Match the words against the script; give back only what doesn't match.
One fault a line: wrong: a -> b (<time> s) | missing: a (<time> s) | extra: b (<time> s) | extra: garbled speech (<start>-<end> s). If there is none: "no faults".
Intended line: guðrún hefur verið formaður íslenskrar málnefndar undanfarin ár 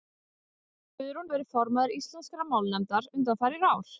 missing: hefur (1.3 s)